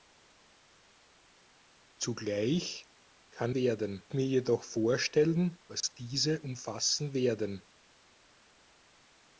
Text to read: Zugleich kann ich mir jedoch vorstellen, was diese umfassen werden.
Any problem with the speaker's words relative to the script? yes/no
yes